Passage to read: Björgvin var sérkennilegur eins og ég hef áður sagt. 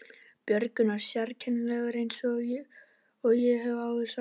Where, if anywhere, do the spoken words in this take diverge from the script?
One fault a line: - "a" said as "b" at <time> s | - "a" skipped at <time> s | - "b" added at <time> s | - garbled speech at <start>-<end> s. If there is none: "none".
none